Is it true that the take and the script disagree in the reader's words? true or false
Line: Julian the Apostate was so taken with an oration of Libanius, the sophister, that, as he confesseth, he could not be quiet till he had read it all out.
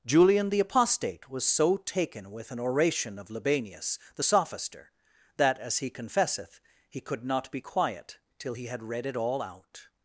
false